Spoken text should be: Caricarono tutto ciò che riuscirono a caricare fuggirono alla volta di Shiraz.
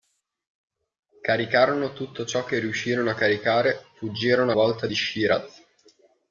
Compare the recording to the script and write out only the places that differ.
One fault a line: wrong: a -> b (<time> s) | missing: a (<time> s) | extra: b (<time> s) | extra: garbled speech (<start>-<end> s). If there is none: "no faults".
missing: alla (4.5 s)